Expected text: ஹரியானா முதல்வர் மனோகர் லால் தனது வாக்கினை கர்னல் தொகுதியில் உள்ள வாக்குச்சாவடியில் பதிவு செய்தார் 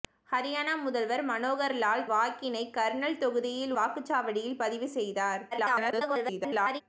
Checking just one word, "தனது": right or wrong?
wrong